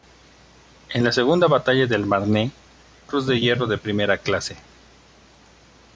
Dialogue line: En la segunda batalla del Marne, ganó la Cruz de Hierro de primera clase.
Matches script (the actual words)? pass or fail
fail